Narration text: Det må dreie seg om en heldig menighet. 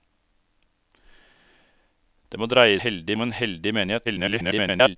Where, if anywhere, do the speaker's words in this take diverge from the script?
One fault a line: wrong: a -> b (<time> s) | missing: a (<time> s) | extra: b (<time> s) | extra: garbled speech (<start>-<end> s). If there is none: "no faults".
wrong: seg -> heldig (2.8 s)
extra: garbled speech (4.0-5.0 s)